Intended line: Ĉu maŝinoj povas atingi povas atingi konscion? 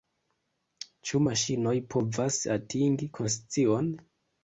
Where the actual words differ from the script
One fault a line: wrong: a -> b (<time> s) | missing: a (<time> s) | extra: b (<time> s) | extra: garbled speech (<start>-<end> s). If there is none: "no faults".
missing: povas atingi (3.1 s)